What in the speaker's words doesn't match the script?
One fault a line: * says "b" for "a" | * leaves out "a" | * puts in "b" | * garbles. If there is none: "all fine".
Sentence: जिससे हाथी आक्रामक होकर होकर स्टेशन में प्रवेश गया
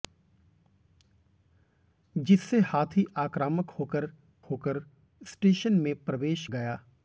all fine